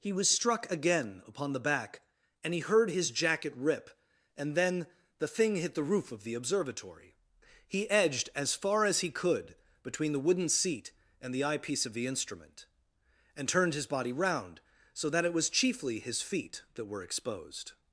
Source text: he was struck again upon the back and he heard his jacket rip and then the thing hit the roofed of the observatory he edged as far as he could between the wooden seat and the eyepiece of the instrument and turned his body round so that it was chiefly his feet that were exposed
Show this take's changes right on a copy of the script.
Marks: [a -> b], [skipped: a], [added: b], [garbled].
he was struck again upon the back and he heard his jacket rip and then the thing hit the [roofed -> roof] of the observatory he edged as far as he could between the wooden seat and the eyepiece of the instrument and turned his body round so that it was chiefly his feet that were exposed